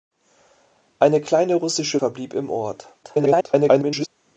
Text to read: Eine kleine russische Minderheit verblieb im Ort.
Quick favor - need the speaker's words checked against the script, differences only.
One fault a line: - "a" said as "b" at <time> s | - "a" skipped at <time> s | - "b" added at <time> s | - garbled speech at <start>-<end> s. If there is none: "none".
- "Minderheit" skipped at 2.0 s
- garbled speech at 3.0-4.1 s